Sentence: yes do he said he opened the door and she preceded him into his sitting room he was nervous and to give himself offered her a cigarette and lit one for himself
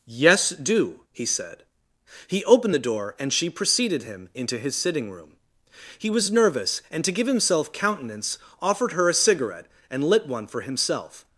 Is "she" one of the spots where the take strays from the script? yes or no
no